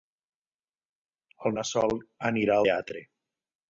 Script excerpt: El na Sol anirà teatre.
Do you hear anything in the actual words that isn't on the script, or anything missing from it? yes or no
no